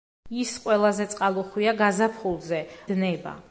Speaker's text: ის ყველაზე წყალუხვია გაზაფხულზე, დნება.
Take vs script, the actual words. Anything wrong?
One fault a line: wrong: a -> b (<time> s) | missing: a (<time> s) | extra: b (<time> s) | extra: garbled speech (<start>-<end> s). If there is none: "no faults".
no faults